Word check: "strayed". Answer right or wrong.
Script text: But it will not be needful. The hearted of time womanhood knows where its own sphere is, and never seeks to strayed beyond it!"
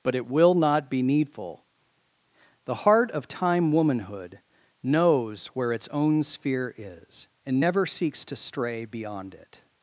wrong